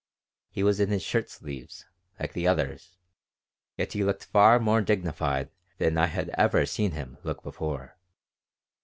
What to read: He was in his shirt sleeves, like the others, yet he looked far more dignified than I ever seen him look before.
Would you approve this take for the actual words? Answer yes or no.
no